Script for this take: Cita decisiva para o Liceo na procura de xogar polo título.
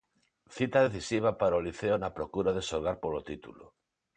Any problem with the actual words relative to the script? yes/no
no